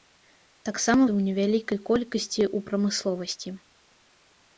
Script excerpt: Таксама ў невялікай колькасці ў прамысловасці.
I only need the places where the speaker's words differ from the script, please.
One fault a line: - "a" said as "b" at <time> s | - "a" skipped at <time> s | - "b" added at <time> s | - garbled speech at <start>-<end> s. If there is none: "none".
none